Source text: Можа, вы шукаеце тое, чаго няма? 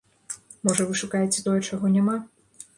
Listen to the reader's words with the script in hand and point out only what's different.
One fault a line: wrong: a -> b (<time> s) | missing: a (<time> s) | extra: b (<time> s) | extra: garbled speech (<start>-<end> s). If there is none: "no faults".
no faults